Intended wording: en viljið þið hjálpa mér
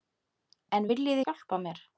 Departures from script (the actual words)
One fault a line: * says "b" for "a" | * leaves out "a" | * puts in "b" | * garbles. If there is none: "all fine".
all fine